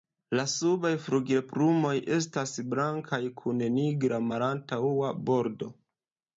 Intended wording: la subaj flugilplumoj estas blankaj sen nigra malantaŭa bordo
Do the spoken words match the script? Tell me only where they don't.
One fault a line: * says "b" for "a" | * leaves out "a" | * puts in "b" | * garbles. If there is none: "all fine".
* says "kun" for "sen"